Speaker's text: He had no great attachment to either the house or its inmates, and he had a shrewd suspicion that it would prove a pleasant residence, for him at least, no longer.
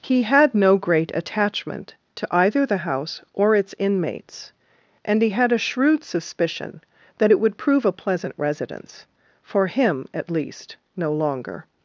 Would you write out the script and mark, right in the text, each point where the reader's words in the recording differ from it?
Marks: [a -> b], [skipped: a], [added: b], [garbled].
He had no great attachment to either the house or its inmates, and he had a shrewd suspicion that it would prove a pleasant residence, for him at least, no longer.